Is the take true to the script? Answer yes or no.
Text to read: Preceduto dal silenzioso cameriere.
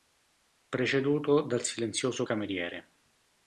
yes